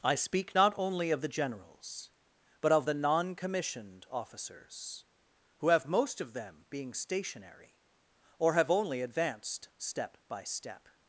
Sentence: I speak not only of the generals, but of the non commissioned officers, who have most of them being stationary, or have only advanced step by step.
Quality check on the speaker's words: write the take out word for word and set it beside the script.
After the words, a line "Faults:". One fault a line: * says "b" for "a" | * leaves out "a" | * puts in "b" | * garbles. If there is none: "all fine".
I speak not only of the generals, but of the non commissioned officers, who have most of them being stationary, or have only advanced step by step.
Faults:
all fine